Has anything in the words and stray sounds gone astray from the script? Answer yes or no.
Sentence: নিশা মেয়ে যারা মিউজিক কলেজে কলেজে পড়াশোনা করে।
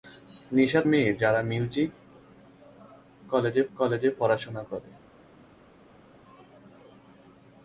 no